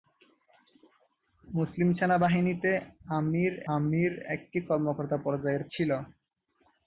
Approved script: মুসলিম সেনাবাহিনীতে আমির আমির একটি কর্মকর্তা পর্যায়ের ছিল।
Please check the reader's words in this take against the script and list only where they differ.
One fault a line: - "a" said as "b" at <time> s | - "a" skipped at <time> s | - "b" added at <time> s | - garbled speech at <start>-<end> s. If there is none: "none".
none